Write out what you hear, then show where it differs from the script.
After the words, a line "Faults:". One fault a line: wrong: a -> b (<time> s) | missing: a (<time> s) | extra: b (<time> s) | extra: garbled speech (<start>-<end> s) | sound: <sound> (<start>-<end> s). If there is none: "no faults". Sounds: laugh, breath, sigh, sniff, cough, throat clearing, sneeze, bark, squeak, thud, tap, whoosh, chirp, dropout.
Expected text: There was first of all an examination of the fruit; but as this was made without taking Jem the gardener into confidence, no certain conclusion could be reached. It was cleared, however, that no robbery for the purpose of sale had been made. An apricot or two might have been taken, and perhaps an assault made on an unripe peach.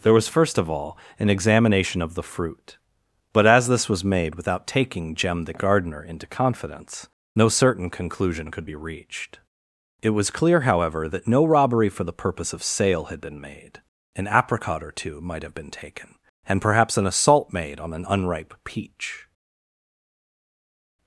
There was first of all an examination of the fruit; but as this was made without taking Jem the gardener into confidence, no certain conclusion could be reached. It was clear, however, that no robbery for the purpose of sale had been made. An apricot or two might have been taken, and perhaps an assault made on an unripe peach.
Faults:
wrong: cleared -> clear (10.3 s)